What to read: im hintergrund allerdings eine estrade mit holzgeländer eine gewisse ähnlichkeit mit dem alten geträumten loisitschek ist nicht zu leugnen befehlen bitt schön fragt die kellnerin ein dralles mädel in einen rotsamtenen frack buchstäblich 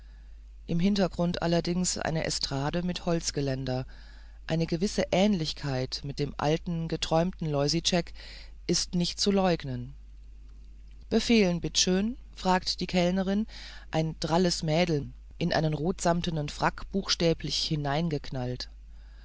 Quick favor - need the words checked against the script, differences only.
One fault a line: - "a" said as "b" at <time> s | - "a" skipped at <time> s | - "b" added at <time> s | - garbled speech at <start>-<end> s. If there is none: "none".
none